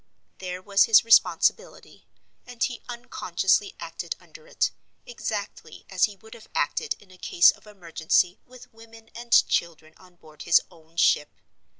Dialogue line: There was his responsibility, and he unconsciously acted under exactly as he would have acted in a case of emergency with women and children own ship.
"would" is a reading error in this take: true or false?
false